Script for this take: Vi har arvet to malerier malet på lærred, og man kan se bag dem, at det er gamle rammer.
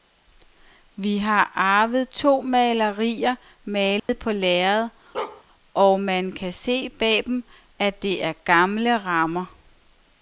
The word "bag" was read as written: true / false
true